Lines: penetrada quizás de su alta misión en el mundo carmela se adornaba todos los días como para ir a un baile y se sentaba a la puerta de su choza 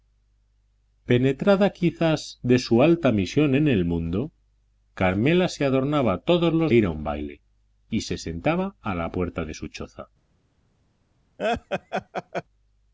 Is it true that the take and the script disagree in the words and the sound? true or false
true